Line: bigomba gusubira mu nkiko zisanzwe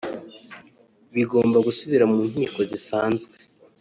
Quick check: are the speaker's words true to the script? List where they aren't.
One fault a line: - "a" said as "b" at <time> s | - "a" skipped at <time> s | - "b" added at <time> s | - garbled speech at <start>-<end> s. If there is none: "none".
none